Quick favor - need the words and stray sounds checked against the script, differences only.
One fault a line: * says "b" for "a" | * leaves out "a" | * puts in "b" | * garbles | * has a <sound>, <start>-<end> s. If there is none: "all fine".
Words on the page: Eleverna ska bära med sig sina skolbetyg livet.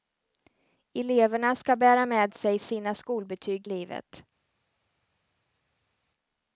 all fine